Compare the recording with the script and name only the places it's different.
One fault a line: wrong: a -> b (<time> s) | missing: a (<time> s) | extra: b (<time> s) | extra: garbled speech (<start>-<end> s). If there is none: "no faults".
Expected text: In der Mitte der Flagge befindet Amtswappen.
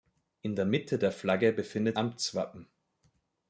no faults